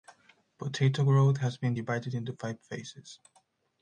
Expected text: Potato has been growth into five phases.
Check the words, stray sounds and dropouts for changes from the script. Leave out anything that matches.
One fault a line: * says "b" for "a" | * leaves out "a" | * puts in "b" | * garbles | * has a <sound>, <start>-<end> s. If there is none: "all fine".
* puts in "growth"
* says "divided" for "growth"